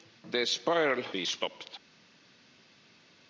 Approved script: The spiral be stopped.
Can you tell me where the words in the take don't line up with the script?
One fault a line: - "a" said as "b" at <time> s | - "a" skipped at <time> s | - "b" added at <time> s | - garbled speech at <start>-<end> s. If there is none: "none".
none